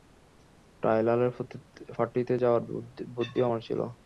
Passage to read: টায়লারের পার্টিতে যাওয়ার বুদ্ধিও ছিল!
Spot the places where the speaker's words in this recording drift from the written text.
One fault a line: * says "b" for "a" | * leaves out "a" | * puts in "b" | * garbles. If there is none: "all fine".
* puts in "আমার"